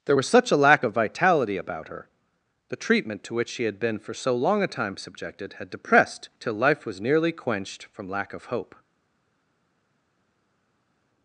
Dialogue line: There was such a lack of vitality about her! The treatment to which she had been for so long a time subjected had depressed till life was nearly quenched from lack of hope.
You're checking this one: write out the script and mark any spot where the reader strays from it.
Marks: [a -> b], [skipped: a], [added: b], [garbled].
There was such a lack of vitality about her! The treatment to which she had been for so long a time subjected had depressed till life was nearly quenched from lack of hope.